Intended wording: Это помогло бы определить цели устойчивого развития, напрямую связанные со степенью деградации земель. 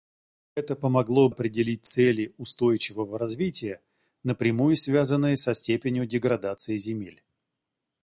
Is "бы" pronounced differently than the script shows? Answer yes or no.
yes